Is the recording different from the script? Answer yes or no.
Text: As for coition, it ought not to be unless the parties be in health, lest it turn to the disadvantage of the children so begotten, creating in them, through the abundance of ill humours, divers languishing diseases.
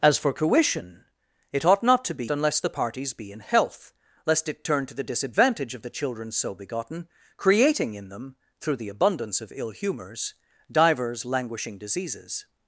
no